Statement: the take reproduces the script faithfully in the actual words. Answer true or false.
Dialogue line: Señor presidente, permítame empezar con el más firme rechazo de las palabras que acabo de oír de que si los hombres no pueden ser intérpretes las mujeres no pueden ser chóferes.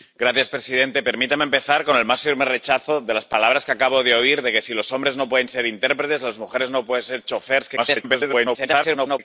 false